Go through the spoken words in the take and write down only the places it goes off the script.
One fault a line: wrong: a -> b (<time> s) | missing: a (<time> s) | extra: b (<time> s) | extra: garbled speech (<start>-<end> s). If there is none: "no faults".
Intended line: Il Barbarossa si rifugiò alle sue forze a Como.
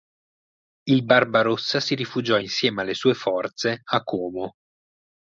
extra: insieme (2.4 s)